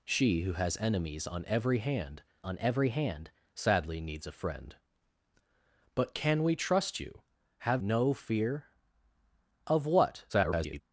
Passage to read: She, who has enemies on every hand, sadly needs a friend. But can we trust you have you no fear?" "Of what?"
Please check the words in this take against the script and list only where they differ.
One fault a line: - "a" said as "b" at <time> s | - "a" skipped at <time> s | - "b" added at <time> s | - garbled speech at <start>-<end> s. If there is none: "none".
- "on every hand" added at 2.4 s
- "you" skipped at 7.8 s
- garbled speech at 10.3-10.8 s